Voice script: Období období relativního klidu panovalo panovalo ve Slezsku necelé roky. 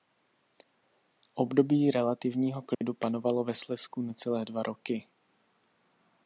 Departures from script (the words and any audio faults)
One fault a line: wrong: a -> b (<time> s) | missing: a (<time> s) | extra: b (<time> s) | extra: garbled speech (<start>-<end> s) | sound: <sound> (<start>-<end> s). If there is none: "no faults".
missing: období (1.9 s)
sound: dropout (2.7-2.8 s)
missing: panovalo (3.4 s)
extra: dva (4.5 s)